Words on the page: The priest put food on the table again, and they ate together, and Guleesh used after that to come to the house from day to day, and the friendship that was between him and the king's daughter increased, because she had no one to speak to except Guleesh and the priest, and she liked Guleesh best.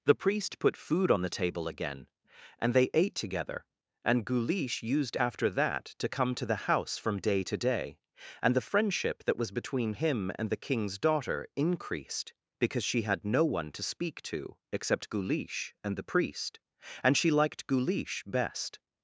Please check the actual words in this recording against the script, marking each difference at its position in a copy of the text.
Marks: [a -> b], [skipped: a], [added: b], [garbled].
The priest put food on the table again, and they ate together, and Guleesh used after that to come to the house from day to day, and the friendship that was between him and the king's daughter increased, because she had no one to speak to except Guleesh and the priest, and she liked Guleesh best.